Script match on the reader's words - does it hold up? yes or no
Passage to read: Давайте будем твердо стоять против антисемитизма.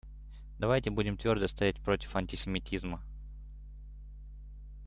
yes